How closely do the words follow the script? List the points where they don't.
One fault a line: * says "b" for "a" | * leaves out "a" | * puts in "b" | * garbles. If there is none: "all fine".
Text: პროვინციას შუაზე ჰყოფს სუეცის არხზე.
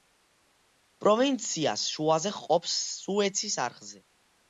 all fine